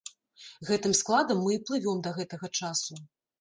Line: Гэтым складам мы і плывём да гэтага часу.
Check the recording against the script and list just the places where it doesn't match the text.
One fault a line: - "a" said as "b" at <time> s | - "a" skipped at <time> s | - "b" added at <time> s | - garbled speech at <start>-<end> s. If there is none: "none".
none